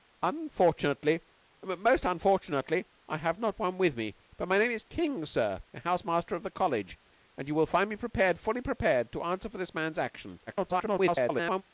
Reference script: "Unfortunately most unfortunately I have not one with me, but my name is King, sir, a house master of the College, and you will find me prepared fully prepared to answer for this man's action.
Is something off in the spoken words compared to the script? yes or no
yes